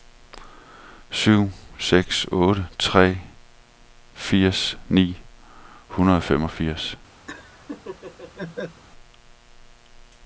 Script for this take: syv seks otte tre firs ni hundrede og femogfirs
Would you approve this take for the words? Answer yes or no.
yes